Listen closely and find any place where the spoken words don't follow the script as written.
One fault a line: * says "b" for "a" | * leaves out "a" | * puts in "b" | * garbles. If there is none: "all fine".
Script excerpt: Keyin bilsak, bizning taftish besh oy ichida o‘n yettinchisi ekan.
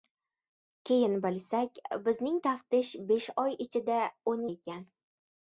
* leaves out "yettinchisi"